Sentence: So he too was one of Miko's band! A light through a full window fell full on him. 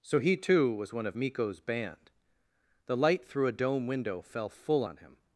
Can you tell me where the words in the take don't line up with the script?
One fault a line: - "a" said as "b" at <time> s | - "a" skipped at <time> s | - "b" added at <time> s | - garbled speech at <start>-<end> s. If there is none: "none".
- "A" said as "The" at 2.9 s
- "full" said as "dome" at 3.5 s